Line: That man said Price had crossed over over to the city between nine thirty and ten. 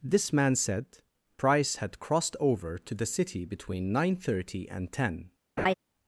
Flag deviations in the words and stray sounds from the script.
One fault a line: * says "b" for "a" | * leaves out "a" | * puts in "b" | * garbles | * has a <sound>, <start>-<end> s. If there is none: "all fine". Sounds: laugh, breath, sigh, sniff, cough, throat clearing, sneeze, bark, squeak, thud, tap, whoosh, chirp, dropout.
* says "This" for "That"
* leaves out "over"
* has a laugh, 5.6-5.7 s